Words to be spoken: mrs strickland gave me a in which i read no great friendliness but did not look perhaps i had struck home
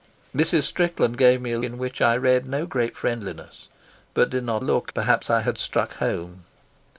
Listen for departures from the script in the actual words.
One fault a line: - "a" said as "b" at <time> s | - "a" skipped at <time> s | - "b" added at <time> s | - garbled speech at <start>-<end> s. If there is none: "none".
none